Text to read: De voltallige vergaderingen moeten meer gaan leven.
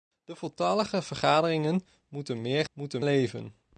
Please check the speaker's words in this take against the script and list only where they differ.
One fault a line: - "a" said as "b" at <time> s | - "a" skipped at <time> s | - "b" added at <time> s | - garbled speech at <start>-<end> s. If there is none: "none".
- "gaan" said as "moeten" at 2.7 s